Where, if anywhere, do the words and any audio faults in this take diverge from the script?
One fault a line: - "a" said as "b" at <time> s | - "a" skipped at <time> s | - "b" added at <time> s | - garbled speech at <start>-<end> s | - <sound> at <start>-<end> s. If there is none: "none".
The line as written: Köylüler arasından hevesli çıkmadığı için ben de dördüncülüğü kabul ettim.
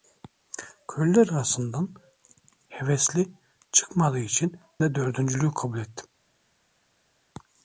- "ben" skipped at 4.6 s